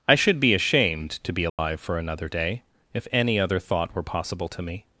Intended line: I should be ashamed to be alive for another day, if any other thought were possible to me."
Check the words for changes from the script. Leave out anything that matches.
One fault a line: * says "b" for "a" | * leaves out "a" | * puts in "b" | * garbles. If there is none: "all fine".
all fine